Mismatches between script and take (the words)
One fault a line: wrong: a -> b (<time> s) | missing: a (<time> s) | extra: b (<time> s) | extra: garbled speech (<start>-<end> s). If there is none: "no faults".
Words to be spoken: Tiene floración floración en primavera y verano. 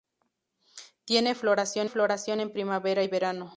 no faults